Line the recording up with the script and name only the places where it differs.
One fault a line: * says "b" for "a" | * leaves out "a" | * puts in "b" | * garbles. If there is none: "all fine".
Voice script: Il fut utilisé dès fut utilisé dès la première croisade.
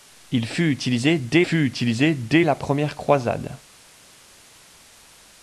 all fine